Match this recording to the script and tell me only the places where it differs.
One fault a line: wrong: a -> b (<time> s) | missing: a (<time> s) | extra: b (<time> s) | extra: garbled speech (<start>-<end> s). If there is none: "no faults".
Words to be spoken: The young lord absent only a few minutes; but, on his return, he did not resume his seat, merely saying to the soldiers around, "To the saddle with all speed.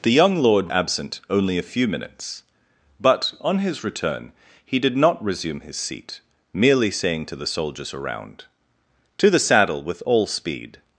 no faults